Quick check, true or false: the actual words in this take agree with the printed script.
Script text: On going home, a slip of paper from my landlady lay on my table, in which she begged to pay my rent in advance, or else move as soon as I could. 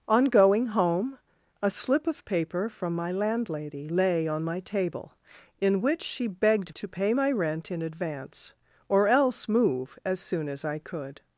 true